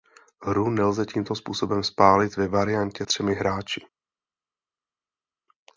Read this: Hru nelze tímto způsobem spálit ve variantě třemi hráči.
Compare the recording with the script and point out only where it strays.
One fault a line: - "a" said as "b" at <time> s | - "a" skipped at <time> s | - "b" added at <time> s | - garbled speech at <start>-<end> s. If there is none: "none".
none